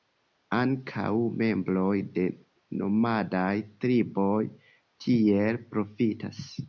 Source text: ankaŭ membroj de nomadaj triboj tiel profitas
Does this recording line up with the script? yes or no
yes